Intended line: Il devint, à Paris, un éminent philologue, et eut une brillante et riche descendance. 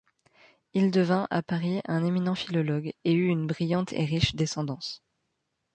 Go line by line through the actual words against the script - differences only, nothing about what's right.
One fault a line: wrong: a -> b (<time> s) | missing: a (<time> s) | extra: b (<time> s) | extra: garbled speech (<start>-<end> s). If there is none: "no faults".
no faults